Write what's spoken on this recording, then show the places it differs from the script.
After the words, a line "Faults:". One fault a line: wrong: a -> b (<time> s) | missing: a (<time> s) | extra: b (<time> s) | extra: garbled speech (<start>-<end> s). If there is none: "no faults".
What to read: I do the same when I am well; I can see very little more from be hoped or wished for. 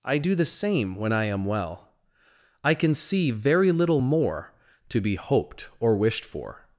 I do the same when I am well; I can see very little more to be hoped or wished for.
Faults:
wrong: from -> to (4.9 s)